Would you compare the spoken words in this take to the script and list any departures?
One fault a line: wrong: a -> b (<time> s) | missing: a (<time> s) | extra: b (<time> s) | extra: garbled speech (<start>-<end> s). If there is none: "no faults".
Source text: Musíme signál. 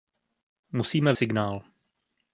no faults